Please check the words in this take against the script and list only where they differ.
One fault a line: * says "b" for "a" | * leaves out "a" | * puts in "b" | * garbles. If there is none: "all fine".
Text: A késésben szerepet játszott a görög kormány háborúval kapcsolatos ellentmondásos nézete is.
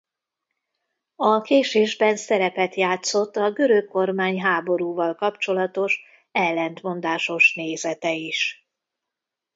all fine